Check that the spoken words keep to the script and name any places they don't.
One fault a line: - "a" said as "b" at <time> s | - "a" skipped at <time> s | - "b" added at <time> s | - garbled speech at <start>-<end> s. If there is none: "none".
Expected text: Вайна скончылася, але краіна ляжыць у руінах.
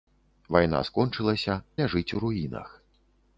- "але краіна" skipped at 1.6 s